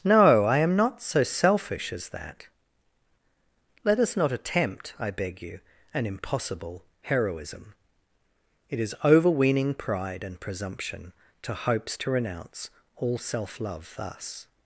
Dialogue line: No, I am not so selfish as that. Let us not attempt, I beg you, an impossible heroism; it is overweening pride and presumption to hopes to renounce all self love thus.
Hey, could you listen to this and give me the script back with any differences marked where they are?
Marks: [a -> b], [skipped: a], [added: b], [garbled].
No, I am not so selfish as that. Let us not attempt, I beg you, an impossible heroism; it is overweening pride and presumption to hopes to renounce all self love thus.